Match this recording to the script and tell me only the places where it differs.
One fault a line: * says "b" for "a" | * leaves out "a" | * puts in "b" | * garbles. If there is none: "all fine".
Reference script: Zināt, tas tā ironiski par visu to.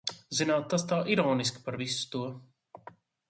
all fine